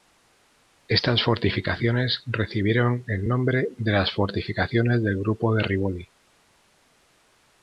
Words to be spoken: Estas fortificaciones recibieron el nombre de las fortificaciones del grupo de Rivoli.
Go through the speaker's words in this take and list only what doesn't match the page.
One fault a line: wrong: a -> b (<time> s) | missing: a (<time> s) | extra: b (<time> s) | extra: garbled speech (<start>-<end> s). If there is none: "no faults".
no faults